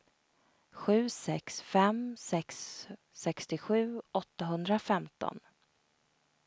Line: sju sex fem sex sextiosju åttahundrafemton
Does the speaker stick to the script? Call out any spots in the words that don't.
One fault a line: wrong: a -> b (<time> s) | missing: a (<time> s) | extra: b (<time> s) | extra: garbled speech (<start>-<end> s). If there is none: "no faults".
no faults